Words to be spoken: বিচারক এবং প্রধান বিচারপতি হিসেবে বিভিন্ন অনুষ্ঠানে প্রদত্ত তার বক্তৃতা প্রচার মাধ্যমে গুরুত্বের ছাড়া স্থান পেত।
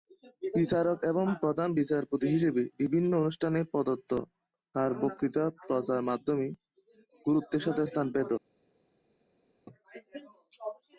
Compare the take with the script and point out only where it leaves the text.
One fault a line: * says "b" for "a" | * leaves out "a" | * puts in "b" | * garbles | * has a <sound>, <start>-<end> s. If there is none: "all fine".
* says "সাথে" for "ছাড়া"